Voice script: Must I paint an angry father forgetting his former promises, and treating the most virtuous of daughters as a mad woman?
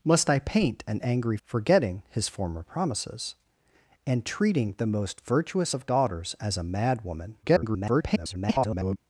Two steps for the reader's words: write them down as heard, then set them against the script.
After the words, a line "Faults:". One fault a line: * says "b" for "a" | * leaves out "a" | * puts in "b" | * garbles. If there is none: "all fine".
Must I paint an angry forgetting his former promises, and treating the most virtuous of daughters as a mad woman? [garbled]
Faults:
* leaves out "father"
* garbles